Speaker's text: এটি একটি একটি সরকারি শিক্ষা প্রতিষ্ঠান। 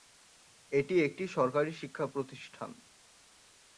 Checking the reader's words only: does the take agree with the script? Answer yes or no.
no